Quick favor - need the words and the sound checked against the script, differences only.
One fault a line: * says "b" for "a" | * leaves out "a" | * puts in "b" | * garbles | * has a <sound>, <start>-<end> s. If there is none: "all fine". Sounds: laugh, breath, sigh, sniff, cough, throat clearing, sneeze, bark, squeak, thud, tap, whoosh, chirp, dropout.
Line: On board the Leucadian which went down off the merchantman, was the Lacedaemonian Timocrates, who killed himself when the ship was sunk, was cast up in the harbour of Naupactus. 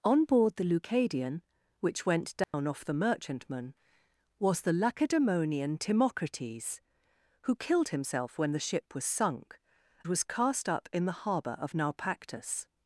* has a dropout, 2.4-2.5 s